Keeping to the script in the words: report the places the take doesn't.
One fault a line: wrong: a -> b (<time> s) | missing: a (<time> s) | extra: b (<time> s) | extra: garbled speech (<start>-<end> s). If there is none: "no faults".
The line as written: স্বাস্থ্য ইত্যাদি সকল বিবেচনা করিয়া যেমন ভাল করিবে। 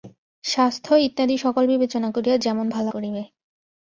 no faults